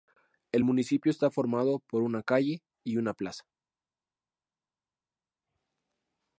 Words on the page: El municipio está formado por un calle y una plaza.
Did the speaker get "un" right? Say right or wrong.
wrong